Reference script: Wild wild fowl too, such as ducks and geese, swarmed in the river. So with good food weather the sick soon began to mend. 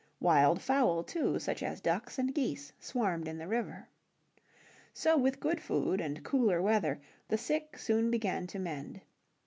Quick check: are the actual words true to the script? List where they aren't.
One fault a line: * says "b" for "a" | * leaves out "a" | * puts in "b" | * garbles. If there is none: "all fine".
* leaves out "wild"
* puts in "and cooler"